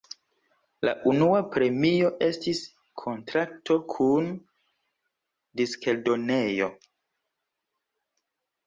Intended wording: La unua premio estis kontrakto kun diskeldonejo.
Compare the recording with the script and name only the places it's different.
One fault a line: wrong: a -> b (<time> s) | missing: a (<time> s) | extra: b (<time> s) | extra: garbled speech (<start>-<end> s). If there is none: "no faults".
no faults